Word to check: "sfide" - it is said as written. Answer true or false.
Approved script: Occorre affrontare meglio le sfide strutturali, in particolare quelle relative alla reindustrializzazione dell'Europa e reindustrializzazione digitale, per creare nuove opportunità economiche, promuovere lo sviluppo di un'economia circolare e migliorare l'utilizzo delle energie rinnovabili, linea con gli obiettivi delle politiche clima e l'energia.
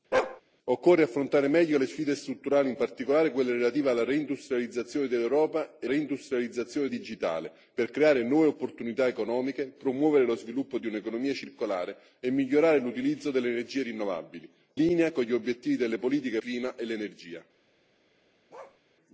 true